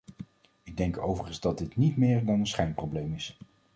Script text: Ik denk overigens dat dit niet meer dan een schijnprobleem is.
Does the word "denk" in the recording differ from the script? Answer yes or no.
no